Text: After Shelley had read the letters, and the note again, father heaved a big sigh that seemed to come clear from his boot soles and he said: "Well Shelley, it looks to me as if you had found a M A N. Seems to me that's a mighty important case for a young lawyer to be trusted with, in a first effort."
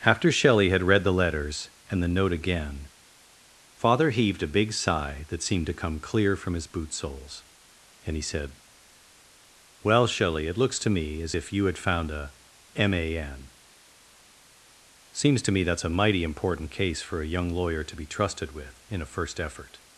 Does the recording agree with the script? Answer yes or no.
yes